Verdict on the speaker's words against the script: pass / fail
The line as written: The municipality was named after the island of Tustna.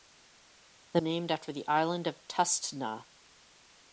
fail